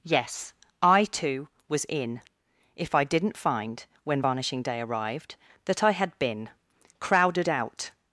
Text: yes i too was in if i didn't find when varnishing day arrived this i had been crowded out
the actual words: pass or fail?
fail